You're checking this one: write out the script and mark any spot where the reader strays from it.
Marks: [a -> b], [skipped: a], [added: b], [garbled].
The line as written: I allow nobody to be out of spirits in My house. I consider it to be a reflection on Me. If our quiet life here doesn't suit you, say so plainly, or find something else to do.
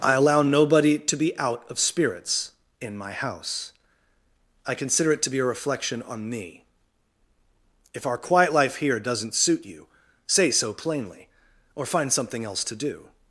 I allow nobody to be out of spirits in My house. I consider it to be a reflection on Me. If our quiet life here doesn't suit you, say so plainly, or find something else to do.